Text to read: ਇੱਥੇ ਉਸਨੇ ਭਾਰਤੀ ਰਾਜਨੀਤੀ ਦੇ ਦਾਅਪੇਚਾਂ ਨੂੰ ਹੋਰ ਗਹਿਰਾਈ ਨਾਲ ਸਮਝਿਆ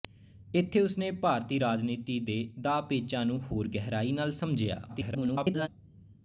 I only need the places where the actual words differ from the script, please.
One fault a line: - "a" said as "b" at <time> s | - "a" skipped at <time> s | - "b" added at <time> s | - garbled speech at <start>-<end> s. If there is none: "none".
- garbled speech at 4.9-5.7 s